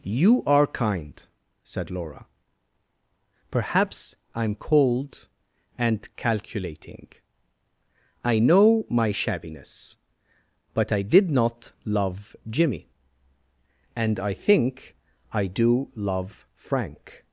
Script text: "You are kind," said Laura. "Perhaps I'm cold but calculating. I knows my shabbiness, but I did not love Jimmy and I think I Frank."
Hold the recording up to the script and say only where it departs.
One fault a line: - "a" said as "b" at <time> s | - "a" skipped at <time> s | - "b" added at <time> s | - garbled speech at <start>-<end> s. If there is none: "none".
- "but" said as "and" at 5.8 s
- "knows" said as "know" at 8.4 s
- "do love" added at 15.5 s